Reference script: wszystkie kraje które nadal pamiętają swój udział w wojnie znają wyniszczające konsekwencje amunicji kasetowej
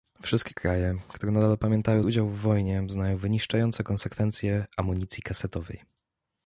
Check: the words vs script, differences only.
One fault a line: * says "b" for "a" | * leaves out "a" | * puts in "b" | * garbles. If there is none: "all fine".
* leaves out "swój"